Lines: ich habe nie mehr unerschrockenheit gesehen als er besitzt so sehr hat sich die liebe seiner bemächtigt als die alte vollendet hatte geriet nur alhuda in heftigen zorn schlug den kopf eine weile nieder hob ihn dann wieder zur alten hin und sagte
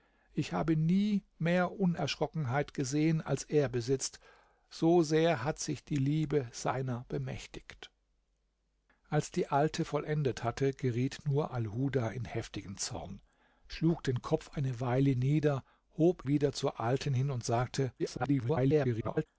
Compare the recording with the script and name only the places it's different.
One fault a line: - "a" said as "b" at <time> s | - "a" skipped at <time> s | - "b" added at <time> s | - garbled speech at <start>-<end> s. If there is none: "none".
- "ihn dann" skipped at 16.3 s
- garbled speech at 18.0-19.3 s